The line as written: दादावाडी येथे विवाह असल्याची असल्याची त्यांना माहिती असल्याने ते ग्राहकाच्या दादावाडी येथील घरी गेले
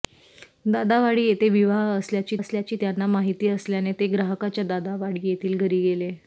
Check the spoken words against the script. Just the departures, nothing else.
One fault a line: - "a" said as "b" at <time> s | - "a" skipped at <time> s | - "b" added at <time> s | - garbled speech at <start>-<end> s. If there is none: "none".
none